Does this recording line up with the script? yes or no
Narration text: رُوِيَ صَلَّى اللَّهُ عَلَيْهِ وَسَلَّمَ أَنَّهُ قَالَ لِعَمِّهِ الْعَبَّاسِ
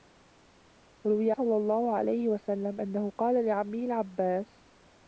yes